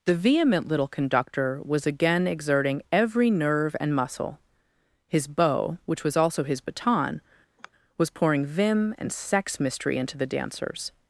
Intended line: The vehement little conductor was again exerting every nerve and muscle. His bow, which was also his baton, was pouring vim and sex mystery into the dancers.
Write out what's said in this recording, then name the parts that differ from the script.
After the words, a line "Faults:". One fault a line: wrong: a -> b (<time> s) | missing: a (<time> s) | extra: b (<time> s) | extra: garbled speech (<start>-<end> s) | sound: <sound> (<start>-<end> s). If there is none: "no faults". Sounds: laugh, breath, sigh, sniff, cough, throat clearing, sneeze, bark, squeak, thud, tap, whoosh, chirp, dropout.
The vehement little conductor was again exerting every nerve and muscle. His bow, which was also his baton, was pouring vim and sex mystery into the dancers.
Faults:
sound: sigh (7.6-7.7 s)